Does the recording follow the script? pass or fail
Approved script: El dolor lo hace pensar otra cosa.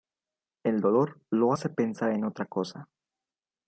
fail